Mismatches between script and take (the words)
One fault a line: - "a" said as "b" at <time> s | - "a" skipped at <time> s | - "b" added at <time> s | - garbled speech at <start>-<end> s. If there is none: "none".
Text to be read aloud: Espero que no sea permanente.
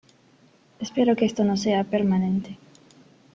- "esto" added at 1.2 s